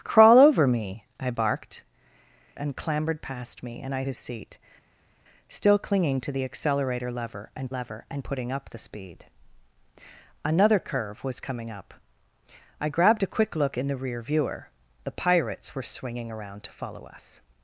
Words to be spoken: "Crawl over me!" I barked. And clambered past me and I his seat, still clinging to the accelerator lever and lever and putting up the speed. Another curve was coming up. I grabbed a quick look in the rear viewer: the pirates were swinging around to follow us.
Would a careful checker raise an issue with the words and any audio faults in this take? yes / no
no